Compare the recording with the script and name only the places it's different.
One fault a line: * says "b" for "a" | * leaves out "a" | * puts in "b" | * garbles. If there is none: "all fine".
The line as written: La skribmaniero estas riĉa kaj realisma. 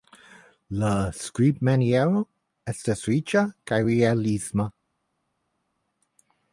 all fine